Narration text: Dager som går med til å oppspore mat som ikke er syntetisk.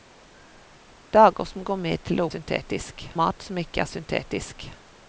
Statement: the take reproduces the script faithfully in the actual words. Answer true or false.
false